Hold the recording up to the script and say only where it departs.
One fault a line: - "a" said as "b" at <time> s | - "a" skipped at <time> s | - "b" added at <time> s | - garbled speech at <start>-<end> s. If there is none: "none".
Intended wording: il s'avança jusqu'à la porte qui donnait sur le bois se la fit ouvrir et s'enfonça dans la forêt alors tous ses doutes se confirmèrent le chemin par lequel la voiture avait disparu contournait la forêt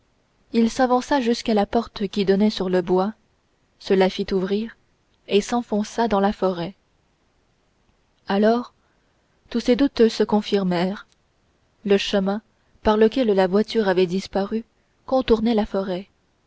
none